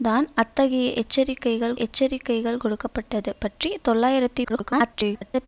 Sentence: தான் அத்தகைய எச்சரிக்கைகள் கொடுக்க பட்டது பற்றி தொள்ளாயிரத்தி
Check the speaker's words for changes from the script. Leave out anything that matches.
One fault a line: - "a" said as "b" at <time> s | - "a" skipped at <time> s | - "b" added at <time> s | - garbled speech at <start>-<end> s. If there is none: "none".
- "எச்சரிக்கைகள்" added at 1.8 s
- garbled speech at 4.4-5.5 s